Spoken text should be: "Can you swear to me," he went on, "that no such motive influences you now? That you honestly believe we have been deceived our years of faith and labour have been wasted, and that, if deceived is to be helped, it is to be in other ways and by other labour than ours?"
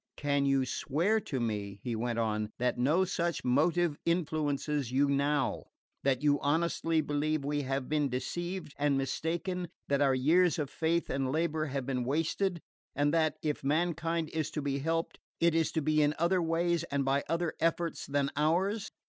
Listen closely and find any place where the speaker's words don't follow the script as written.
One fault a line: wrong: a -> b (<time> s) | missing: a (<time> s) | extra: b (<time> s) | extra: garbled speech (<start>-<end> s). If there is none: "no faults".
extra: and mistaken That (8.8 s)
wrong: deceived -> mankind (13.6 s)
wrong: labour -> efforts (17.6 s)